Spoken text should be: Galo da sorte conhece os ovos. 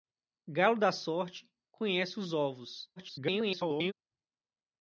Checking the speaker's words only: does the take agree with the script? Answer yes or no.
no